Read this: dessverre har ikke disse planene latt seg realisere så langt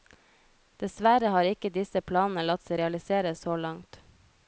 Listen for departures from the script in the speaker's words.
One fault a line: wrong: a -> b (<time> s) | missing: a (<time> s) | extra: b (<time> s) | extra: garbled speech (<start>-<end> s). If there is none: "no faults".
no faults